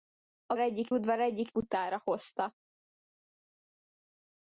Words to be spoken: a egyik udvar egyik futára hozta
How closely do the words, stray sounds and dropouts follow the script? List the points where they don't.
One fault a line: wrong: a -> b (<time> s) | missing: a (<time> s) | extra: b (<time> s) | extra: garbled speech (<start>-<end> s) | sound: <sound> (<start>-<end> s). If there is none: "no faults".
no faults